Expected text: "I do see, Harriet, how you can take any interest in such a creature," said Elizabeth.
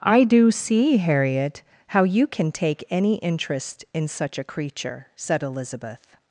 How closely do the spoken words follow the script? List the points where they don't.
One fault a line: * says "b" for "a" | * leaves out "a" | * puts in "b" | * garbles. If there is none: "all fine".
all fine